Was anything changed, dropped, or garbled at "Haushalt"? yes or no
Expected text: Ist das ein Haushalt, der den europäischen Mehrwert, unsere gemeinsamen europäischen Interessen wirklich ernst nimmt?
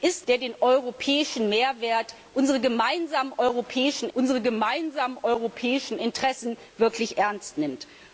yes